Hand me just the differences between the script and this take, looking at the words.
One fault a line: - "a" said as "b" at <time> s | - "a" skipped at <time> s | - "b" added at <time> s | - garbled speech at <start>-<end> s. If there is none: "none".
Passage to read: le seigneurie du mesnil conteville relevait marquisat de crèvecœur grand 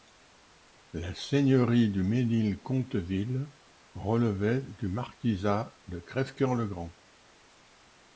- "le" said as "la" at 0.9 s
- "du" added at 4.6 s
- "le" added at 6.5 s